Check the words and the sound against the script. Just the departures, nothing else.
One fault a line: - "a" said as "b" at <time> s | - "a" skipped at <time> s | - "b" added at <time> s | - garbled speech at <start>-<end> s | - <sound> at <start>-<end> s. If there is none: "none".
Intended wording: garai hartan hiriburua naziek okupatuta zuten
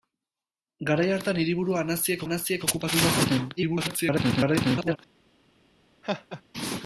- "naziek" added at 2.2 s
- garbled speech at 3.6-5.0 s
- laugh at 6.0-6.4 s